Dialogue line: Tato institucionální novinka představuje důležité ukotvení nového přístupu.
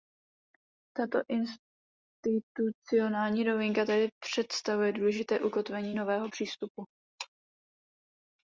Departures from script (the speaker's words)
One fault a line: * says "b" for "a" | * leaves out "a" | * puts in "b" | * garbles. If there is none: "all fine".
* puts in "tedy"